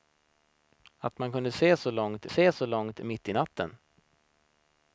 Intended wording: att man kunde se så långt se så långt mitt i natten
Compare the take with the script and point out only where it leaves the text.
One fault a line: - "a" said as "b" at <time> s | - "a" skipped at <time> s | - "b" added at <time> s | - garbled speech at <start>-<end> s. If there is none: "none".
none